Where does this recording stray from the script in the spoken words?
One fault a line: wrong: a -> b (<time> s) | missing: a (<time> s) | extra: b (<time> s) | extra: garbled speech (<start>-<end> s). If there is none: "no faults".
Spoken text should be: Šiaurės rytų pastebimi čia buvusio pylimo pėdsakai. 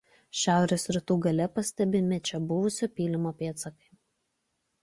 extra: gale (1.2 s)